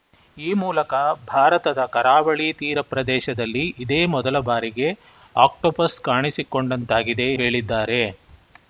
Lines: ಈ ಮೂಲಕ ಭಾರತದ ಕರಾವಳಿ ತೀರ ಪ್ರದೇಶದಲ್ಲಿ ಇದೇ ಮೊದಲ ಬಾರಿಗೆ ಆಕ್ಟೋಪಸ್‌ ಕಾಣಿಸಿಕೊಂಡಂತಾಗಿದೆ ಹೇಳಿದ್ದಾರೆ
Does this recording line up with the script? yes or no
yes